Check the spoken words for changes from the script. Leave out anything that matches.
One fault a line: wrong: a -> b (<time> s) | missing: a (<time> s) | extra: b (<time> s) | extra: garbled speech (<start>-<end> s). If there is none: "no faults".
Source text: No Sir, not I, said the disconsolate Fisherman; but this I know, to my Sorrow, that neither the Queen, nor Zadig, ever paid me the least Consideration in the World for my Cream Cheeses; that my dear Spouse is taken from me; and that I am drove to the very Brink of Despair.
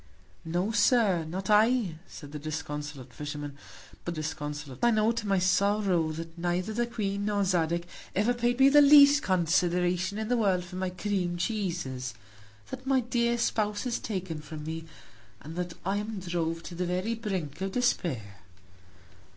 wrong: this -> disconsolate (4.1 s)